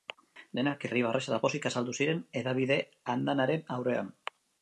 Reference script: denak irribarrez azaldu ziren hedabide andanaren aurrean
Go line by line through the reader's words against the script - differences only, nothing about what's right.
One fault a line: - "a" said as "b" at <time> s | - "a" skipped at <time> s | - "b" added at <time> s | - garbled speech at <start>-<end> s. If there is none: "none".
- "eta pozik" added at 1.2 s